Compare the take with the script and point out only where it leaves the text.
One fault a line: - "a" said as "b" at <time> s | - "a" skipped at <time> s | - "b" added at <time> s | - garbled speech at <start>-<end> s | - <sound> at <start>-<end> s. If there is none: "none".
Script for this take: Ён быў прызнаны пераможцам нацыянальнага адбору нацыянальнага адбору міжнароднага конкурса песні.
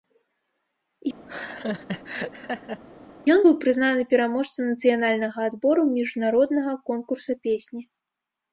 - laugh at 1.3-2.8 s
- "нацыянальнага адбору" skipped at 5.8 s